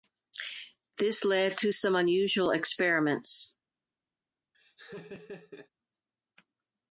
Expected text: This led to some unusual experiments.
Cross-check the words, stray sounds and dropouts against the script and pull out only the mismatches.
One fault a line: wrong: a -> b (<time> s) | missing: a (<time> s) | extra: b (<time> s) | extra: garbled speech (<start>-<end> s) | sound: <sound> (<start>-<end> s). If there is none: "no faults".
sound: laugh (4.5-5.7 s)